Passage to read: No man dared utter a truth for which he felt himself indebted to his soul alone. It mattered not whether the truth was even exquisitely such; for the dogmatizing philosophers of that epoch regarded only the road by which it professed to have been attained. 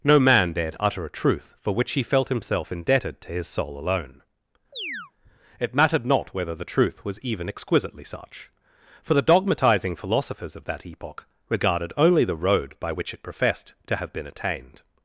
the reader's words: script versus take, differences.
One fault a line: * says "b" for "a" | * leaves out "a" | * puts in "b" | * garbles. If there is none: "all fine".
all fine